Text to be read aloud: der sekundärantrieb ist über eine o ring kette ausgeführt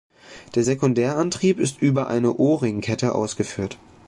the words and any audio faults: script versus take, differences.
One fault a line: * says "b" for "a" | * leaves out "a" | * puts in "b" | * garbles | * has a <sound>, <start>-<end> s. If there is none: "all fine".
all fine